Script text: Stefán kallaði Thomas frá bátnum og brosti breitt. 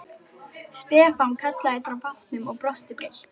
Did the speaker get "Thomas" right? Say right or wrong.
wrong